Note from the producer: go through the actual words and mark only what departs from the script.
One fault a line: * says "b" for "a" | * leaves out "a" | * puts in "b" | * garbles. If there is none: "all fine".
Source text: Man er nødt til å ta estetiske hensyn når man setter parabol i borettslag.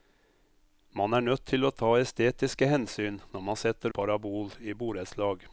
all fine